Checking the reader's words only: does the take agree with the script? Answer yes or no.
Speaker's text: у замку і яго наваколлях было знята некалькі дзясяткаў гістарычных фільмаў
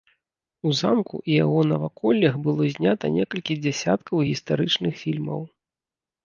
yes